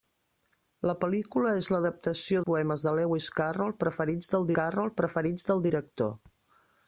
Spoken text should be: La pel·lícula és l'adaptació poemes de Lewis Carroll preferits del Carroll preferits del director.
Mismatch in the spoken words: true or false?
false